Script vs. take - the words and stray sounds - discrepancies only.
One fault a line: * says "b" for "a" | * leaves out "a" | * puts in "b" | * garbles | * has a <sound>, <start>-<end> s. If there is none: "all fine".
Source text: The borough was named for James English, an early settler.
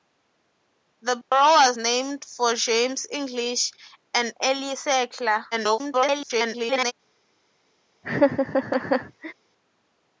* has a dropout, 1.2-1.3 s
* garbles
* has a laugh, 8.0-9.3 s